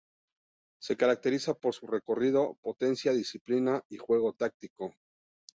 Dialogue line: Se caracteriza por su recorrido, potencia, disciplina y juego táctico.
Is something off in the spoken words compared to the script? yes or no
no